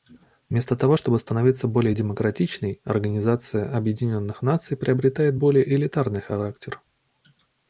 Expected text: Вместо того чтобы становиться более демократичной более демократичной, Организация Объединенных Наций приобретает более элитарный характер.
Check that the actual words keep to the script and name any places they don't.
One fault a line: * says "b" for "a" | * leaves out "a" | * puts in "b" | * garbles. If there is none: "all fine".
* leaves out "более демократичной"